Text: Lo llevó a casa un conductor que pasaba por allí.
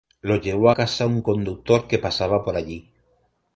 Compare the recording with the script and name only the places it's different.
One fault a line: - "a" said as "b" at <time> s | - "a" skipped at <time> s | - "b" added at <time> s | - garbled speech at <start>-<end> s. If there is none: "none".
- "a" skipped at 0.7 s